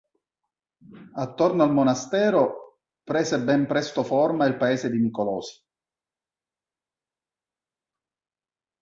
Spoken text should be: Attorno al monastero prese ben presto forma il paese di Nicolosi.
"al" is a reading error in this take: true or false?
false